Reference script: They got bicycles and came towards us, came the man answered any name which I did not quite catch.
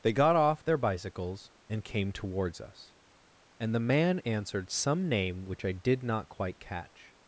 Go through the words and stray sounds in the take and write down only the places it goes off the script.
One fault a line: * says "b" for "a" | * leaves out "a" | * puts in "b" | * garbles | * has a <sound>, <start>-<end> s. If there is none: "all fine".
* puts in "off their"
* says "and" for "came"
* says "some" for "any"